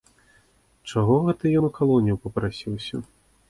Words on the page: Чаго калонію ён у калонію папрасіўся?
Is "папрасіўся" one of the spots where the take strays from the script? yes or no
no